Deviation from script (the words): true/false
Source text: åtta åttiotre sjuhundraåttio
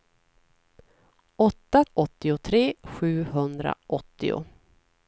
false